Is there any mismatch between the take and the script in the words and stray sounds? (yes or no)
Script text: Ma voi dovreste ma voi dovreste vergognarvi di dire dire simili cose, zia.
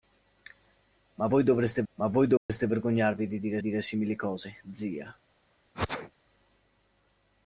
yes